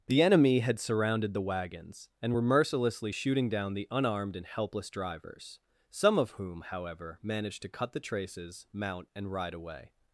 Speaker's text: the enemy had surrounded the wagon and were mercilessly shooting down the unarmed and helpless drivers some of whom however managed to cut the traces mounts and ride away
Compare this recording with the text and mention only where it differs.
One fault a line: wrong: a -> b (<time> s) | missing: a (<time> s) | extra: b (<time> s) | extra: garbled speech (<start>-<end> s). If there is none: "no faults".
wrong: wagon -> wagons (1.4 s)
wrong: mounts -> mount (8.7 s)